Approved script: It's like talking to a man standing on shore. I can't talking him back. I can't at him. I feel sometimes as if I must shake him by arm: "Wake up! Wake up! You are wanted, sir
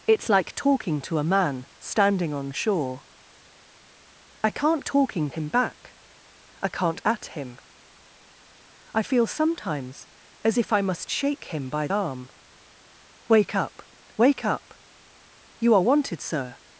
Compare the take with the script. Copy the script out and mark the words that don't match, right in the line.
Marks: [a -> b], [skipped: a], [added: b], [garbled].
It's like talking to a man standing on shore. I can't talking him back. I can't at him. I feel sometimes as if I must shake him by arm: "Wake up! Wake up! You are wanted, sir